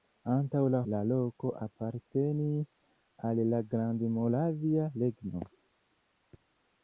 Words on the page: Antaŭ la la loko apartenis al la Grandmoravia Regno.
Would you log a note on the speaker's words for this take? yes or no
no